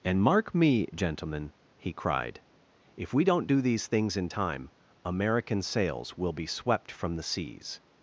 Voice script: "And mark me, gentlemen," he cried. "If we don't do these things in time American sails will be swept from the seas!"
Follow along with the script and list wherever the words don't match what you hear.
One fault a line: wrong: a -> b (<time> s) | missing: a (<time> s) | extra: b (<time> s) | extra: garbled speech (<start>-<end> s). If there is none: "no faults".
no faults